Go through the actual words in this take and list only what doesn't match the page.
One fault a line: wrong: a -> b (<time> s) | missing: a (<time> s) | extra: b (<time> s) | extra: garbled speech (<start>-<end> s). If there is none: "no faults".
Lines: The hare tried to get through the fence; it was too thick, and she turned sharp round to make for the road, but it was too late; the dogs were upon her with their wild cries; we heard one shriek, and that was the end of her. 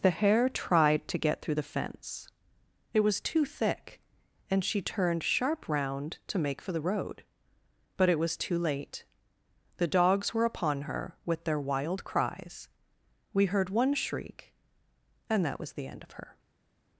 no faults